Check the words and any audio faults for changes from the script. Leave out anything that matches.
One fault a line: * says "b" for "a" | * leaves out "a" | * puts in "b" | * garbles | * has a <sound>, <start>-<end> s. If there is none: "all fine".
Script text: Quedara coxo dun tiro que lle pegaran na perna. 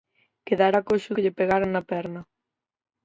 * leaves out "dun tiro"